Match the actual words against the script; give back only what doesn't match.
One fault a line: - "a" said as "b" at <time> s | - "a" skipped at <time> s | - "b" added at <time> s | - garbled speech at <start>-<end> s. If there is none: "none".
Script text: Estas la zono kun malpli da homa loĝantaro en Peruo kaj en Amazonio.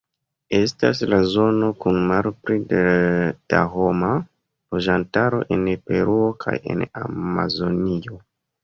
none